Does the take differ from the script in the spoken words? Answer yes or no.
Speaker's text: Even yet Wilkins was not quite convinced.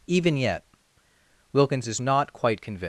yes